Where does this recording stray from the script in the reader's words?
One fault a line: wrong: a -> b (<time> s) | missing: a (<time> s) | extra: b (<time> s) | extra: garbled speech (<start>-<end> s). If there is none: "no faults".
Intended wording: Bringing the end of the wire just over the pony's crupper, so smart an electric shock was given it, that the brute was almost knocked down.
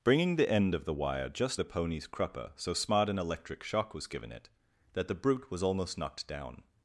missing: over (1.6 s)